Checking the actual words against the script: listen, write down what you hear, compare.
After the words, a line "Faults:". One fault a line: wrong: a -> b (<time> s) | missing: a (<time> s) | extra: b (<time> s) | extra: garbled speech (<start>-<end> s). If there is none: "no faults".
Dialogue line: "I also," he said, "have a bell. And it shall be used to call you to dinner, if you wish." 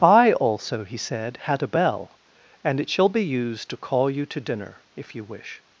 "I also," he said, "had a bell. And it shall be used to call you to dinner, if you wish."
Faults:
wrong: have -> had (1.4 s)